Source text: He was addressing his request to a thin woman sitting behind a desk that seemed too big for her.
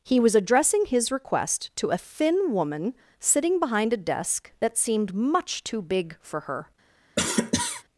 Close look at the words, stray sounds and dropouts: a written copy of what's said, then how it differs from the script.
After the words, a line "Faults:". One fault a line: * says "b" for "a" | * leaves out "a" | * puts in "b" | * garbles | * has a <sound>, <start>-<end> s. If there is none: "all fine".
He was addressing his request to a thin woman sitting behind a desk that seemed much too big for her.
Faults:
* puts in "much"
* has a cough, 7.2-7.8 s